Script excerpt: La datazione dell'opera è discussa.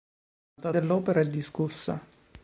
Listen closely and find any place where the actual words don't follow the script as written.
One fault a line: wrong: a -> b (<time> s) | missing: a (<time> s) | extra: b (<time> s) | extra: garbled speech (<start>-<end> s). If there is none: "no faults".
missing: datazione (0.7 s)